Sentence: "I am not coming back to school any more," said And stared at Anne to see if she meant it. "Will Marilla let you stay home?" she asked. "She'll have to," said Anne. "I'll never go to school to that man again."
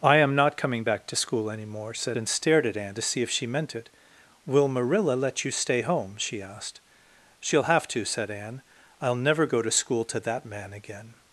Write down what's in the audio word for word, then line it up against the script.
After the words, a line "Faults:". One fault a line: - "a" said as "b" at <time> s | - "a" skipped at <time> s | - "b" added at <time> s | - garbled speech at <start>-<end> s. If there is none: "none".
"I am not coming back to school any more," said And stared at Anne to see if she meant it. "Will Marilla let you stay home?" she asked. "She'll have to," said Anne. "I'll never go to school to that man again."
Faults:
none